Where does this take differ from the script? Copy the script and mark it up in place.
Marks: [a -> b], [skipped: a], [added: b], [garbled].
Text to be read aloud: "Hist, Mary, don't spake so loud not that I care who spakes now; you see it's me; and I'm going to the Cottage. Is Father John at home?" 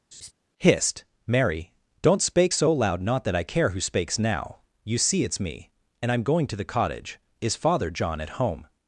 "Hist, Mary, don't spake so loud not that I care who spakes now; you see it's me; and I'm going to the Cottage. Is Father John at home?"